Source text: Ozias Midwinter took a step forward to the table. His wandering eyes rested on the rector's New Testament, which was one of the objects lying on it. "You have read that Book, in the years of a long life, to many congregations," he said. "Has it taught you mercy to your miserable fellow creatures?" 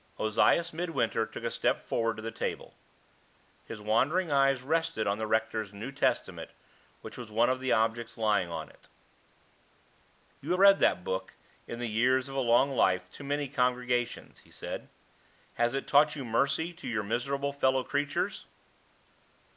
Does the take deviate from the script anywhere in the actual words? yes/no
yes